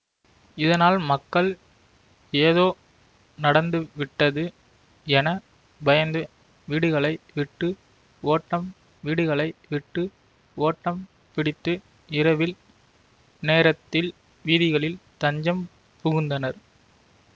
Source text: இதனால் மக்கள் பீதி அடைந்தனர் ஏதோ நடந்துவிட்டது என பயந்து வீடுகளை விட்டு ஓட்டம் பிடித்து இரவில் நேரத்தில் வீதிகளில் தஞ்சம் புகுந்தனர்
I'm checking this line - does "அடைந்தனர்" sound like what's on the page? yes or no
no